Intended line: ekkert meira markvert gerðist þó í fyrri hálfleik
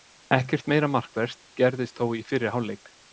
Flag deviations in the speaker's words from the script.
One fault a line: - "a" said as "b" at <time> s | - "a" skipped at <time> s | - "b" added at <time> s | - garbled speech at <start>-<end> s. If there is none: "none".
none